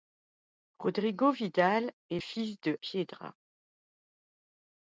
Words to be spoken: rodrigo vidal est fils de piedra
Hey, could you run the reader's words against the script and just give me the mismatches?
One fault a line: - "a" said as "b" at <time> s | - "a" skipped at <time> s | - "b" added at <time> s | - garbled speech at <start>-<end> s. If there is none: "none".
none